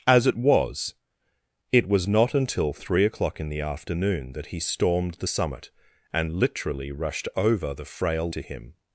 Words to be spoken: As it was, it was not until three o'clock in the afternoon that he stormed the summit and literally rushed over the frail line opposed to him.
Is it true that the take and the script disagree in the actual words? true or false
true